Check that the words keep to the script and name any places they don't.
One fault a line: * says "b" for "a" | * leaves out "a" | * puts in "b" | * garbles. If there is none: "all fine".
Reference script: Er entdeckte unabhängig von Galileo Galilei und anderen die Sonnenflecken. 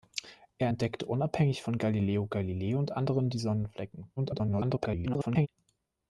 * garbles